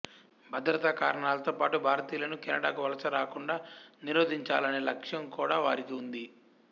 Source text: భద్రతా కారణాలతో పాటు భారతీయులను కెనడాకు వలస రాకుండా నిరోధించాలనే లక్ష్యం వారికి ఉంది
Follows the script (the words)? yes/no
no